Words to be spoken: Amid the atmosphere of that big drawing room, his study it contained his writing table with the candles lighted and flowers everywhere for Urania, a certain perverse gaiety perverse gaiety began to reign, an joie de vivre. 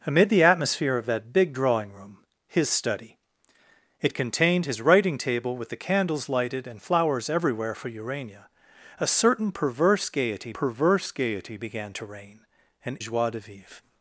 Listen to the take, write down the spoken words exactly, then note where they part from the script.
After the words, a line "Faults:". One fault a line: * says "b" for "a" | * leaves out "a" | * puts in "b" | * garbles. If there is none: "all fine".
Amid the atmosphere of that big drawing room, his study it contained his writing table with the candles lighted and flowers everywhere for Urania, a certain perverse gaiety perverse gaiety began to reign, an joie de vivre.
Faults:
all fine